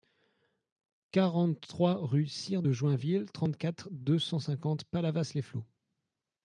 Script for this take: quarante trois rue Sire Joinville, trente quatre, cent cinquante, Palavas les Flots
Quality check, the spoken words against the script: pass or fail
fail